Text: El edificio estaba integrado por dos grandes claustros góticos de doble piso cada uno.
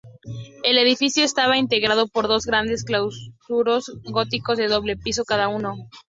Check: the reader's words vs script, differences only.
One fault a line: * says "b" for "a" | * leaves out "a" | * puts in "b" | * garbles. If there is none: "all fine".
all fine